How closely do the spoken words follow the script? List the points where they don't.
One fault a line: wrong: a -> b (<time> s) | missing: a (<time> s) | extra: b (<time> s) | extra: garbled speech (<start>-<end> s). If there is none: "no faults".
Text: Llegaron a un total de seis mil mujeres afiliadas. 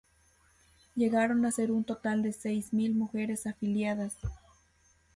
extra: ser (1.5 s)